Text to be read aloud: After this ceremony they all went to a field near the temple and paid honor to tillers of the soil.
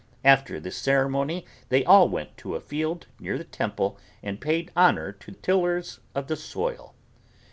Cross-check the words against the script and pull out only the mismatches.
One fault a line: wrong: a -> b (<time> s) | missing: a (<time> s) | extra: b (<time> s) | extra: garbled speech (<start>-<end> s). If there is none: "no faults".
no faults